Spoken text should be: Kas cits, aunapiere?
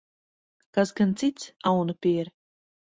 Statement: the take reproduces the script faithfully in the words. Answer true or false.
false